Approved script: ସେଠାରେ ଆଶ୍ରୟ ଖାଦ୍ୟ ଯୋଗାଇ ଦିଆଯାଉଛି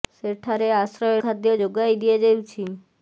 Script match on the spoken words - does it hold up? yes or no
yes